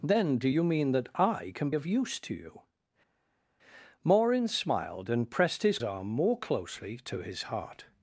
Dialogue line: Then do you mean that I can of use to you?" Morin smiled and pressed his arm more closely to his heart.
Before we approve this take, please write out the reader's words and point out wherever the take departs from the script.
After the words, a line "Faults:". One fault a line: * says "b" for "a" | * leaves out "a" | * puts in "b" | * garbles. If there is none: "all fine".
Then do you mean that I can of use to you?" Morin smiled and pressed his arm more closely to his heart.
Faults:
all fine